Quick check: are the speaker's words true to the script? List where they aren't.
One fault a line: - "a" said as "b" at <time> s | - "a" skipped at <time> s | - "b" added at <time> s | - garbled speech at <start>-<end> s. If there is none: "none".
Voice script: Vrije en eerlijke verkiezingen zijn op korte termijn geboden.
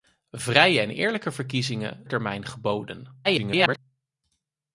- "zijn op korte" skipped at 2.0 s
- garbled speech at 3.2-3.8 s